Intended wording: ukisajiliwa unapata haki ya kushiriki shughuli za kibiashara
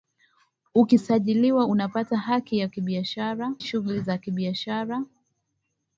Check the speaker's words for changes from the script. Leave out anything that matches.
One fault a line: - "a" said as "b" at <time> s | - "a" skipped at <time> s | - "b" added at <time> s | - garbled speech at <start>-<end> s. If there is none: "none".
- "kushiriki" said as "kibiashara" at 2.7 s